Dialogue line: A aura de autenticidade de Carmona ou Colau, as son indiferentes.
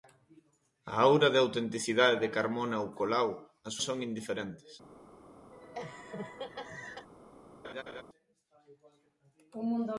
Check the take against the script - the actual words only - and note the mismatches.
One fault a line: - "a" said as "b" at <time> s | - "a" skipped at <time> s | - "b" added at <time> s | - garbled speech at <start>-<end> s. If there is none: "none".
none